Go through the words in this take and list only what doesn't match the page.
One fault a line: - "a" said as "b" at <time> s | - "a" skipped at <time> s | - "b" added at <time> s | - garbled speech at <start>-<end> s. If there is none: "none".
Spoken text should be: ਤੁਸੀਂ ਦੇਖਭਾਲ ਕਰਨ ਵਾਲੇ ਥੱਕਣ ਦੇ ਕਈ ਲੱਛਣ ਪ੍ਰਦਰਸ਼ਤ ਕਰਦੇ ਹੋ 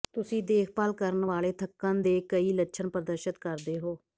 none